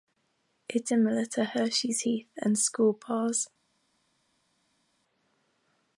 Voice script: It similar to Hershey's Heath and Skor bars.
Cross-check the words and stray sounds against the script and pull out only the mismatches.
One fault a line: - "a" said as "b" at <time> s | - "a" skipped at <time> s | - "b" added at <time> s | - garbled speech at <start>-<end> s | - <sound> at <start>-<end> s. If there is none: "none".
none